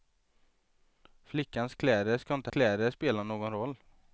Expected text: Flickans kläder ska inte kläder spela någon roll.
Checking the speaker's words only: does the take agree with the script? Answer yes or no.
yes